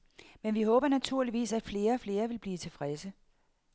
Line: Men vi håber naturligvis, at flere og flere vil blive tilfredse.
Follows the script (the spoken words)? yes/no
yes